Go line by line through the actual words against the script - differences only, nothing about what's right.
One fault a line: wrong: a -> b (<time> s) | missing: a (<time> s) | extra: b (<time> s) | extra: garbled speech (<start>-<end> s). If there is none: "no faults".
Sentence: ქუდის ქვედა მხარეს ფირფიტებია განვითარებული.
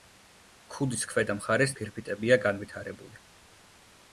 no faults